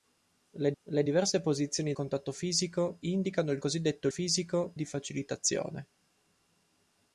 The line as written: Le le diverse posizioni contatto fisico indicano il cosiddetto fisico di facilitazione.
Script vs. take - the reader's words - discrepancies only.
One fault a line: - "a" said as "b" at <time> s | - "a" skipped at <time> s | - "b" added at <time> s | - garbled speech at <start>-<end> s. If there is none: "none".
none